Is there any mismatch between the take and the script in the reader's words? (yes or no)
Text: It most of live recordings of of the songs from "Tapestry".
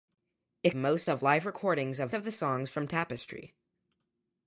no